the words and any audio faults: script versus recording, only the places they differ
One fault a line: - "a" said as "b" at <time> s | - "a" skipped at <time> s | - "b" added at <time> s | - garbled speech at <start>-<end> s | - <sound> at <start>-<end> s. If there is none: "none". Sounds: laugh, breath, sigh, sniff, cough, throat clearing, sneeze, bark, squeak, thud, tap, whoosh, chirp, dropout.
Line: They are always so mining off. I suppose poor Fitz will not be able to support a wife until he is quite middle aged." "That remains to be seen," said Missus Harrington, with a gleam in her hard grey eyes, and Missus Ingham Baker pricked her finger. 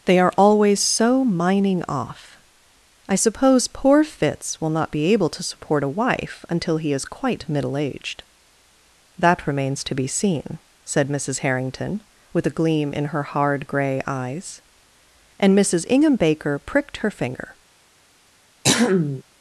- throat clearing at 18.6-19.2 s